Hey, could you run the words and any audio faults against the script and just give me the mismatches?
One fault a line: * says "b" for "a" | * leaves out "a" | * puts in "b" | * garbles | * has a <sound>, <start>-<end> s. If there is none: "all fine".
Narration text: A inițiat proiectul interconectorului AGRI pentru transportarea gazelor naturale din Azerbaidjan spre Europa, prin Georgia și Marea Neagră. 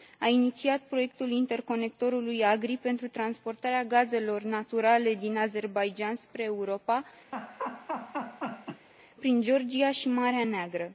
* has a laugh, 7.3-8.9 s